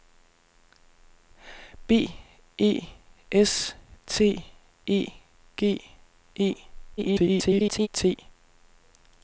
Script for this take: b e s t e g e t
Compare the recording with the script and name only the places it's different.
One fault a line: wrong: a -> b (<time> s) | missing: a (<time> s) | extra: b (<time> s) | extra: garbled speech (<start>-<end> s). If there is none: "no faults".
extra: garbled speech (7.0-7.9 s)